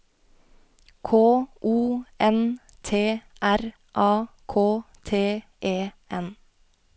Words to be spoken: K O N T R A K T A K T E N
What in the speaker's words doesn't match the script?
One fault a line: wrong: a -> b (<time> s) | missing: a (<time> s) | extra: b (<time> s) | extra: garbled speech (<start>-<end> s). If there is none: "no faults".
missing: A K T (5.4 s)